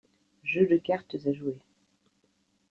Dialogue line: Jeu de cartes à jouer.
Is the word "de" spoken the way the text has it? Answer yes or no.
yes